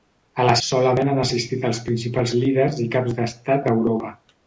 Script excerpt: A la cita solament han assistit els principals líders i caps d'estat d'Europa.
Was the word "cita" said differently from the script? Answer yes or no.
yes